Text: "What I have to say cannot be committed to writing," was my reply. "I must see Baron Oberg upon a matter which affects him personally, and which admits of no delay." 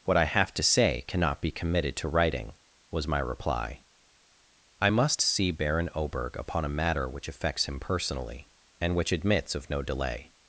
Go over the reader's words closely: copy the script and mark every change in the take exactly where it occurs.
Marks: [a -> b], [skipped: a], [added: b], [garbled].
"What I have to say cannot be committed to writing," was my reply. "I must see Baron Oberg upon a matter which affects him personally, and which admits of no delay."